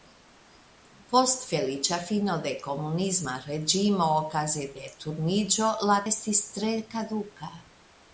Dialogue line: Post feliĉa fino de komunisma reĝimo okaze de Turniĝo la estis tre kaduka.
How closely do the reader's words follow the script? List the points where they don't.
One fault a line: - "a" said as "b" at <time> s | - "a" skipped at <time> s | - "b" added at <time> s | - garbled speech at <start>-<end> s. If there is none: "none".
none